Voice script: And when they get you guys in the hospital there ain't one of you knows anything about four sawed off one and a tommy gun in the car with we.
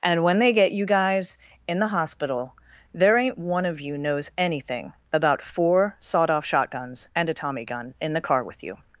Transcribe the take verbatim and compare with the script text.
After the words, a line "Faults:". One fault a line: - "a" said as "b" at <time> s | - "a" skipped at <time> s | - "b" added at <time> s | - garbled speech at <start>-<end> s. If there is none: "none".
And when they get you guys in the hospital there ain't one of you knows anything about four sawed off shotguns and a tommy gun in the car with you.
Faults:
- "one" said as "shotguns" at 6.5 s
- "we" said as "you" at 8.6 s